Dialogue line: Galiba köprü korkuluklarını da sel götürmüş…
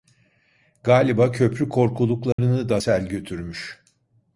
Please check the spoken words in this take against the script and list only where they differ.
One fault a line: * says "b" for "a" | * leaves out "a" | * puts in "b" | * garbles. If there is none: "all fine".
all fine